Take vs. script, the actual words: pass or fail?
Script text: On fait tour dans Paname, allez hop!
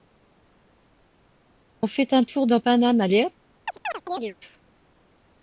fail